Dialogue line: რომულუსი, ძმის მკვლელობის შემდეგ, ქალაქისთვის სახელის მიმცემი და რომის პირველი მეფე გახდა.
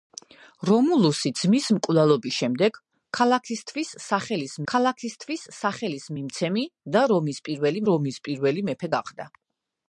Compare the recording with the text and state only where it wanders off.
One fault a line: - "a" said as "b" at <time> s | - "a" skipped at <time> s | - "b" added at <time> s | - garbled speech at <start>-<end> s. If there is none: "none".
- "ქალაქისთვის სახელის" added at 4.7 s
- "რომის პირველი" added at 7.9 s